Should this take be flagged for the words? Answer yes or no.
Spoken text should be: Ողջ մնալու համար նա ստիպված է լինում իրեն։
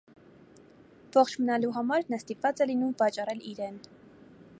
yes